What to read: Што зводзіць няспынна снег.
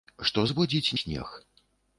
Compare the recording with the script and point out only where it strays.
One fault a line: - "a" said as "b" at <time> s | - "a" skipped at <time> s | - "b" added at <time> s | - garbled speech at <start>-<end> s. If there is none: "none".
- "няспынна" skipped at 0.9 s